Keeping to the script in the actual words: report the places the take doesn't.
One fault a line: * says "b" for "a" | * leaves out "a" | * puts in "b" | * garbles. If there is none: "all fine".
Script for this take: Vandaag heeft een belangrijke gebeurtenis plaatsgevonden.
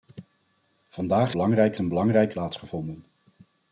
* says "belangrijke" for "heeft"
* leaves out "gebeurtenis"